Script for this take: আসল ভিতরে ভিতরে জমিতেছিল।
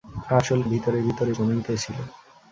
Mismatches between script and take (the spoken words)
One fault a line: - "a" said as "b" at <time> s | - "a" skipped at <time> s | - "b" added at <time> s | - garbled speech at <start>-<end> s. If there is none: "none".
none